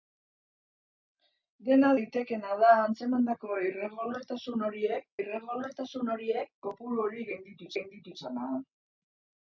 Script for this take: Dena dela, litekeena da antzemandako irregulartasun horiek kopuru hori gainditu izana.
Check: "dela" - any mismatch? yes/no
yes